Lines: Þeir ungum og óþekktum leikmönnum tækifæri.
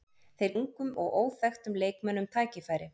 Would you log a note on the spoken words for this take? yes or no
no